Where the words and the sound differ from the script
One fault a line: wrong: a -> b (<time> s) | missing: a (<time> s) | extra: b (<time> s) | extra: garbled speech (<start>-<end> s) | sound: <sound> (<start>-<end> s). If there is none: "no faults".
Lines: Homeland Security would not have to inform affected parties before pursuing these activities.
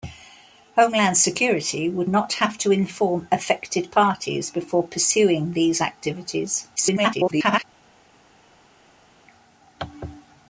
extra: garbled speech (6.8-7.6 s)